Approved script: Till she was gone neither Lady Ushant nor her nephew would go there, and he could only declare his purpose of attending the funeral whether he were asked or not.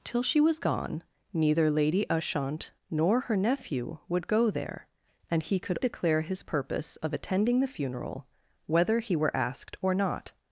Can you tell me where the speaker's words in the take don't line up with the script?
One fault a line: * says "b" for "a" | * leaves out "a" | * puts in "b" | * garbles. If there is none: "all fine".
* leaves out "only"